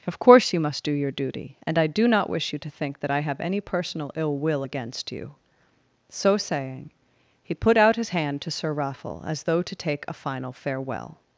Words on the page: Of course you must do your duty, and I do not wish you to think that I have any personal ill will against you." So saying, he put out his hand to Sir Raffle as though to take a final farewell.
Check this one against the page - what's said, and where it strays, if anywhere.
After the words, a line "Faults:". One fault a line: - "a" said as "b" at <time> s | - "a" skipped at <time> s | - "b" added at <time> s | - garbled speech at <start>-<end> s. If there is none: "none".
Of course you must do your duty, and I do not wish you to think that I have any personal ill will against you." So saying, he put out his hand to Sir Raffle as though to take a final farewell.
Faults:
none